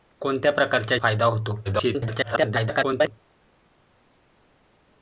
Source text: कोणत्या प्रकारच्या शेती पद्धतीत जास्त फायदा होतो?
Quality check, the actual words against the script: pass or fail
fail